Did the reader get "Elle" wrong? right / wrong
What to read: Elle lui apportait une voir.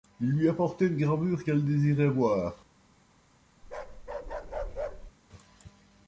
wrong